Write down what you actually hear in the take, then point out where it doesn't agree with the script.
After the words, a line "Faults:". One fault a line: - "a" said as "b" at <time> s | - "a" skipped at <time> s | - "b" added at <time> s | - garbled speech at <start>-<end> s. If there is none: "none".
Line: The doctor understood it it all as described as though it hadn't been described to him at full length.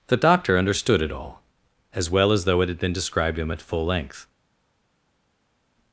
The doctor understood it all as well as though it had been described to him at full length.
Faults:
- "it" skipped at 1.1 s
- "described" said as "well" at 2.1 s
- "hadn't" said as "had" at 2.7 s